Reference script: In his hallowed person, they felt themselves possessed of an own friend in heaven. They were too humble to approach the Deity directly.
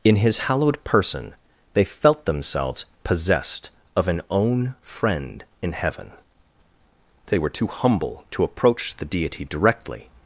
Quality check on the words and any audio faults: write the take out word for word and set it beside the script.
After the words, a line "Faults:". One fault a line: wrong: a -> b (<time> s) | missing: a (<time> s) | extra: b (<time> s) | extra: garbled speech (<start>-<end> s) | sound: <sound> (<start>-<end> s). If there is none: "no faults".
In his hallowed person, they felt themselves possessed of an own friend in heaven. They were too humble to approach the Deity directly.
Faults:
no faults